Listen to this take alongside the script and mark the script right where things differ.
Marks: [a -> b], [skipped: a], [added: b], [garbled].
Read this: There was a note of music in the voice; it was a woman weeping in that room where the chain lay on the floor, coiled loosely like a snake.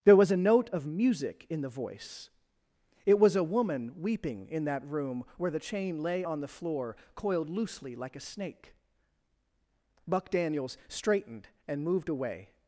There was a note of music in the voice; it was a woman weeping in that room where the chain lay on the floor, coiled loosely like a snake. [added: Buck Daniels straightened and moved away]